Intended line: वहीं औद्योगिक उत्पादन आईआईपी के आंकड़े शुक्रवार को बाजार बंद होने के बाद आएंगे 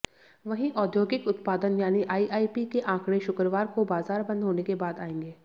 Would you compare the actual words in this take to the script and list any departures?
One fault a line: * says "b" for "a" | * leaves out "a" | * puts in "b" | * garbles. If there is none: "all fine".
* puts in "यानी"